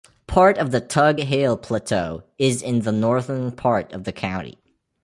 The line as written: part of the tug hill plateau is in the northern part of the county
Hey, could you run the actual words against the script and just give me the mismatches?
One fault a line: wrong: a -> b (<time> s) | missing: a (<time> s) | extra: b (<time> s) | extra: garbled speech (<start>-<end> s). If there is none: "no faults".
no faults